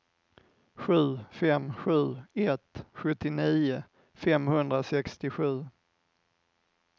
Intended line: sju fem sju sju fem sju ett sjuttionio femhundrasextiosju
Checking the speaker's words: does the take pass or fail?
fail